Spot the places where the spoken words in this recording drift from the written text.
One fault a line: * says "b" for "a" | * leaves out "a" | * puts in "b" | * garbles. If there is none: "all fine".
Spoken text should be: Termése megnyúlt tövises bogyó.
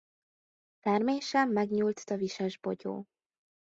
all fine